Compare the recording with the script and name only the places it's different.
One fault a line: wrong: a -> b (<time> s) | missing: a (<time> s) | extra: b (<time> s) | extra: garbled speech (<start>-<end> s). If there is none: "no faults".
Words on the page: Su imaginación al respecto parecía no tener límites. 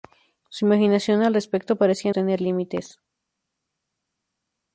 missing: no (2.1 s)